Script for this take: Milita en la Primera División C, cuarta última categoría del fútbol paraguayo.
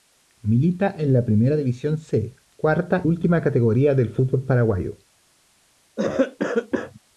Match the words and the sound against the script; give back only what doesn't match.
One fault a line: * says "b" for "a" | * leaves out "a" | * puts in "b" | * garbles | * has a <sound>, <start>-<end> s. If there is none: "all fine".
* has a cough, 6.0-7.0 s